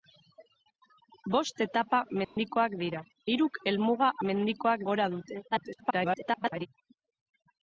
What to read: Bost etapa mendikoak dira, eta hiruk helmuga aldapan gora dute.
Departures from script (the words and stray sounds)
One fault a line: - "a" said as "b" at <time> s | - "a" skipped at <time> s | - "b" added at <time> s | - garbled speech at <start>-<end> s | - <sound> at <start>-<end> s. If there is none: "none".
- dropout at 2.2-2.4 s
- "eta" skipped at 3.0 s
- "aldapan" said as "mendikoak" at 4.3 s
- garbled speech at 5.5-6.7 s